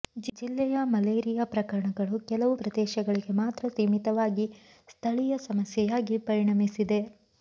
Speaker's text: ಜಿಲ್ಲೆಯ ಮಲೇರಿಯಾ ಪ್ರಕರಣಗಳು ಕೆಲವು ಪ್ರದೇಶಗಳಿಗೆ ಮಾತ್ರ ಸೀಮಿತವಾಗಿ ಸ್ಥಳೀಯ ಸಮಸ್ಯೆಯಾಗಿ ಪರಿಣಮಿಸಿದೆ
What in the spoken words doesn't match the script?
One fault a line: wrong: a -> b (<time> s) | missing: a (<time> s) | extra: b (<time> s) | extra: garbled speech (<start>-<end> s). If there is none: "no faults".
no faults